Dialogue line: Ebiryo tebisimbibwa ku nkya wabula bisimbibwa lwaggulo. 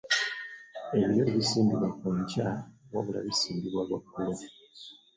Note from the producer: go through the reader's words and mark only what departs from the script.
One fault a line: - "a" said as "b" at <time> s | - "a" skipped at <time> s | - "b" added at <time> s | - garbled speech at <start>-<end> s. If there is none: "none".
none